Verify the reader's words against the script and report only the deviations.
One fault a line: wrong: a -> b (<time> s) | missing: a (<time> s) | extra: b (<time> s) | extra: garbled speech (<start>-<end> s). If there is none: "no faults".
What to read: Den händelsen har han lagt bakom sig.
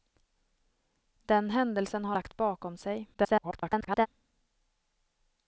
missing: han (2.1 s)
extra: garbled speech (3.1-4.1 s)